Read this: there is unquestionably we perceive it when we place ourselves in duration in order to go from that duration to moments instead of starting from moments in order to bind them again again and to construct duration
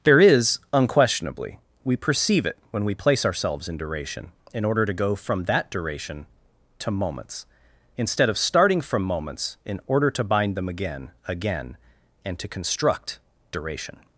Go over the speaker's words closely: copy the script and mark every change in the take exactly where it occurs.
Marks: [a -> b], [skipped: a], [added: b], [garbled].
there is unquestionably we perceive it when we place ourselves in duration in order to go from that duration to moments instead of starting from moments in order to bind them again again and to construct duration